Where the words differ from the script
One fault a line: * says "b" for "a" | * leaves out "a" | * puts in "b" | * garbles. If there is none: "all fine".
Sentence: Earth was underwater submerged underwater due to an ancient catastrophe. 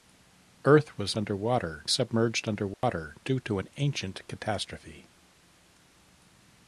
all fine